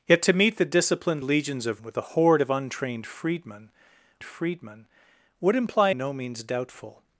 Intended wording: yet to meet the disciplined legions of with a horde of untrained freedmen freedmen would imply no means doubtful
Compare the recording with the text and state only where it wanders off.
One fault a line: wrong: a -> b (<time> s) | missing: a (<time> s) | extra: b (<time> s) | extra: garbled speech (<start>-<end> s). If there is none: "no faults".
no faults